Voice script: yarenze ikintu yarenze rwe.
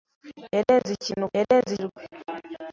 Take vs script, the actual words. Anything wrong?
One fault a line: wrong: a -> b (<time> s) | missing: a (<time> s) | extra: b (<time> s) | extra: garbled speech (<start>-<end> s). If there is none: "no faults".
no faults